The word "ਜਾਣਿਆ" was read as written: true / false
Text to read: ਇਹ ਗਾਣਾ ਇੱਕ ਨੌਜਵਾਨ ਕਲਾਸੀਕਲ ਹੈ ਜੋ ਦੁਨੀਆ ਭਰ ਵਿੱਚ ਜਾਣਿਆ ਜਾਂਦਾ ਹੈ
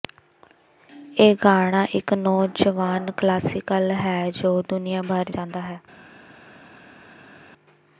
false